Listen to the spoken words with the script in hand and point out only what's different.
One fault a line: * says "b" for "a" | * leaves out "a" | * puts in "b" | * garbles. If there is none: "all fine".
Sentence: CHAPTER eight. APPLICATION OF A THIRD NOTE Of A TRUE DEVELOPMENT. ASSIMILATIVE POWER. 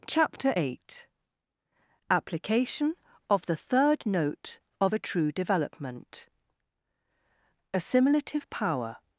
* says "THE" for "A"